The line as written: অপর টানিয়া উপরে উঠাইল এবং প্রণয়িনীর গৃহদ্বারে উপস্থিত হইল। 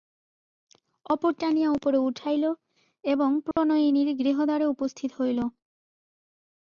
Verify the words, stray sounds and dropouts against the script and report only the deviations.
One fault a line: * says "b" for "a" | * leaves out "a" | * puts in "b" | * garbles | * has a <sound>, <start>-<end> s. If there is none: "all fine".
* has a dropout, 3.5-3.6 s